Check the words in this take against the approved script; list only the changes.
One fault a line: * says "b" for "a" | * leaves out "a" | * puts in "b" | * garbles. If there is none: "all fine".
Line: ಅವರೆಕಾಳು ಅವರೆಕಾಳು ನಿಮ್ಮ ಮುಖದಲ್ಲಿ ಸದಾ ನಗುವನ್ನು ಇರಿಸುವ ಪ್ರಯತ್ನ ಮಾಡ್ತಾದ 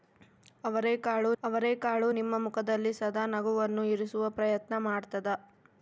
all fine